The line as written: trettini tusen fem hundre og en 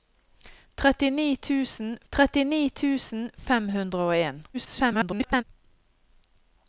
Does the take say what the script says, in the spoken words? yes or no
no